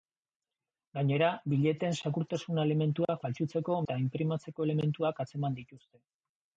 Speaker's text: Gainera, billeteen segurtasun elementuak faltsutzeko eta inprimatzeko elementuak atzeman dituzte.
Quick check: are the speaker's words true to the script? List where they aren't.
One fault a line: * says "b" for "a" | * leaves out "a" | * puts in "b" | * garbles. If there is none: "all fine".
all fine